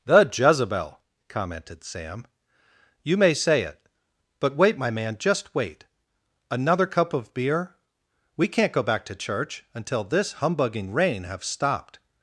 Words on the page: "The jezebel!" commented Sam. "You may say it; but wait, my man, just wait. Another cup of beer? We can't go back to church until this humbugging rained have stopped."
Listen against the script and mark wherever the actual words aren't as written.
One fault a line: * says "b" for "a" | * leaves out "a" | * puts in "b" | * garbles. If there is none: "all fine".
* says "rain" for "rained"